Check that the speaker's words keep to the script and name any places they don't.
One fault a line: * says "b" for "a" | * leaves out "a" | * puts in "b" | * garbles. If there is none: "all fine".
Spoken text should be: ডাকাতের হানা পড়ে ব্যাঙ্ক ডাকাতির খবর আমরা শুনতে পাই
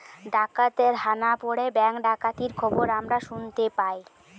all fine